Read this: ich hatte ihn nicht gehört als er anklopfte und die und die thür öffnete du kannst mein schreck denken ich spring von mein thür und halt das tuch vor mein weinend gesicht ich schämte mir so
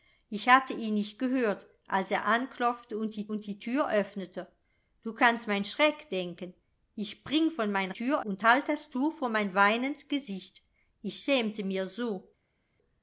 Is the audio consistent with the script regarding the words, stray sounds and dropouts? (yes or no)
yes